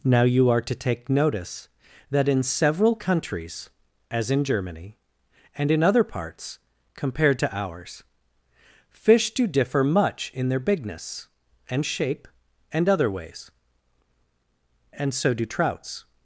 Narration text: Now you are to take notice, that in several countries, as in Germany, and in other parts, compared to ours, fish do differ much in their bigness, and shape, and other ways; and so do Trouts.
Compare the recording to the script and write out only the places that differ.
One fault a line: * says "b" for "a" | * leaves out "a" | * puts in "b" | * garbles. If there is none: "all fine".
all fine